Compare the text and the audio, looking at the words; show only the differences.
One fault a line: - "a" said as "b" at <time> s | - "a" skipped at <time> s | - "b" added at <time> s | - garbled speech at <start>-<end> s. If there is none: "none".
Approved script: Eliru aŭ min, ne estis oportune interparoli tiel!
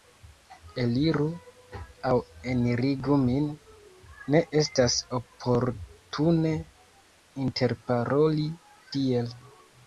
- "enirigu" added at 2.5 s
- "estis" said as "estas" at 4.6 s